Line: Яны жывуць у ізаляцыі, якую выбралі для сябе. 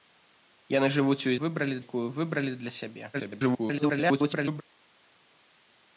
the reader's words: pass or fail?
fail